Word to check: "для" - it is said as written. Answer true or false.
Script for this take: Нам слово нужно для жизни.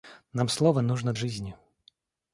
false